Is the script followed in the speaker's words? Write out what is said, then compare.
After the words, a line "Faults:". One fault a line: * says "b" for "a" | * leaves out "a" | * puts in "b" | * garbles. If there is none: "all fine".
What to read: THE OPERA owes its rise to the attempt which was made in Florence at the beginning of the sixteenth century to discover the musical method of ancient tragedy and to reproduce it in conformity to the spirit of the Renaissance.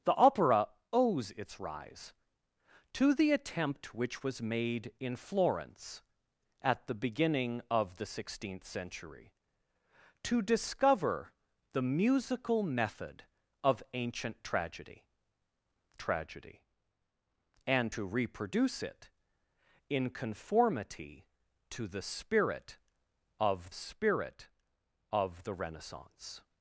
THE OPERA owes its rise to the attempt which was made in Florence at the beginning of the sixteenth century to discover the musical method of ancient tragedy tragedy and to reproduce it in conformity to the spirit of spirit of the Renaissance.
Faults:
* puts in "tragedy"
* puts in "spirit of"